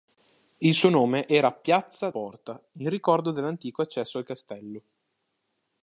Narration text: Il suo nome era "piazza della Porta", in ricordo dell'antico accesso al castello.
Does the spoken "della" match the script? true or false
false